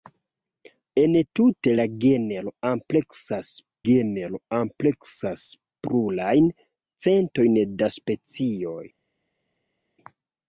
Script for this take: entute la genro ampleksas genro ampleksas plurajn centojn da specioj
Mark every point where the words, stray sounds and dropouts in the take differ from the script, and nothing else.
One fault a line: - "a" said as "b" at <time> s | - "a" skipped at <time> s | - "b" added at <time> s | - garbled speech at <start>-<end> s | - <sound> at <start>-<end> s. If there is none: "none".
none